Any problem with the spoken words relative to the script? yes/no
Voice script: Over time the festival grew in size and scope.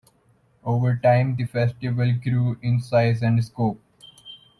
no